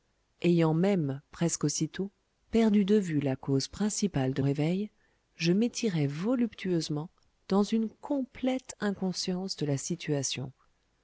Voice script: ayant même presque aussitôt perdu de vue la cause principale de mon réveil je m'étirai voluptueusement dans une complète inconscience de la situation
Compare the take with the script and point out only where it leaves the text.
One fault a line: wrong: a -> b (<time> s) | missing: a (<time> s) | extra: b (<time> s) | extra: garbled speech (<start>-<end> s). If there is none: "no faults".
missing: mon (4.4 s)